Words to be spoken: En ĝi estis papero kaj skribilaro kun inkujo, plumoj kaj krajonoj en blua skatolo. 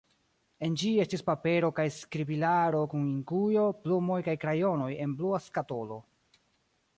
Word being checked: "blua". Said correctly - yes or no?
yes